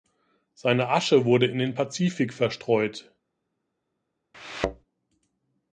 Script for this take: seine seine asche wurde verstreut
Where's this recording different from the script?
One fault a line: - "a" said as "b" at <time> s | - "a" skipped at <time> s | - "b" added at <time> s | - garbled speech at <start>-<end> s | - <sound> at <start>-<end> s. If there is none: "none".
- "seine" skipped at 0.9 s
- "in den pazifik" added at 1.4 s
- thud at 4.3-4.8 s